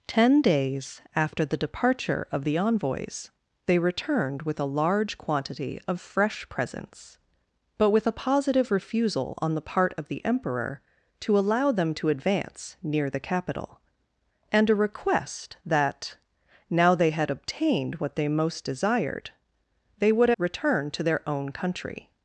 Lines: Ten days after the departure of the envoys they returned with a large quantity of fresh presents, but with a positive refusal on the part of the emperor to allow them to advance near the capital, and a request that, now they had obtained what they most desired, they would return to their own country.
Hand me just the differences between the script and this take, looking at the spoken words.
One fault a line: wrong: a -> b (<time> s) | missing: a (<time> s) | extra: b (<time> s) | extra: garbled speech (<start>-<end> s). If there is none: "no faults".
no faults